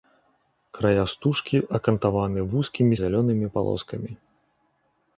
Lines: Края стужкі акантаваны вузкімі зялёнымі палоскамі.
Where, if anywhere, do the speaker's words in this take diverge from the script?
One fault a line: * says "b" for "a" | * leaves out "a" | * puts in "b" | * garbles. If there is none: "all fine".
all fine